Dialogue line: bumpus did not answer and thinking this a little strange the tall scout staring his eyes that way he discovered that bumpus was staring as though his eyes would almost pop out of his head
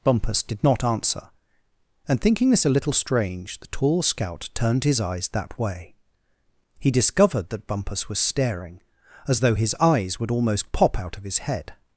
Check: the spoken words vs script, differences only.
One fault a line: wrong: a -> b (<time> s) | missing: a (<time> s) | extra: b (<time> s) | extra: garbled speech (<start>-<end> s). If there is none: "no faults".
wrong: staring -> turned (4.5 s)